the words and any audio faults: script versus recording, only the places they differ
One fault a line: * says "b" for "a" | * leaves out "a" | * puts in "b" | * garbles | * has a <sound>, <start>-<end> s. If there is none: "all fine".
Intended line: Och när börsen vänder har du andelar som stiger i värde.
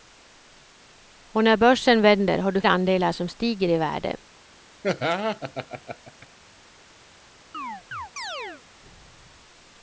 * has a laugh, 4.8-6.3 s
* has a chirp, 7.5-8.6 s